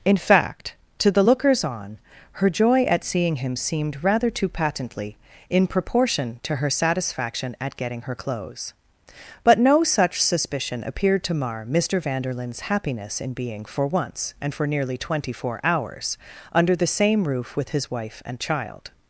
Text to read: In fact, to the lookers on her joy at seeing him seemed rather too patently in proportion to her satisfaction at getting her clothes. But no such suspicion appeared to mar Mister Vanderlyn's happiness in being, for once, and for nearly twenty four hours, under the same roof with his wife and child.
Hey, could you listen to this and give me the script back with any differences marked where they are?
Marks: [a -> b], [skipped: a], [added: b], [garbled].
In fact, to the lookers on her joy at seeing him seemed rather too patently in proportion to her satisfaction at getting her clothes. But no such suspicion appeared to mar Mister Vanderlyn's happiness in being, for once, and for nearly twenty four hours, under the same roof with his wife and child.